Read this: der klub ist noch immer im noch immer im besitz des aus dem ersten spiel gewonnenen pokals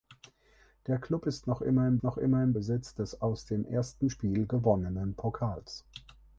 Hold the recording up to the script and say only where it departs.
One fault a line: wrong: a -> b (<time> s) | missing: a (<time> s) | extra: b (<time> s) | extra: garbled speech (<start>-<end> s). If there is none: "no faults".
no faults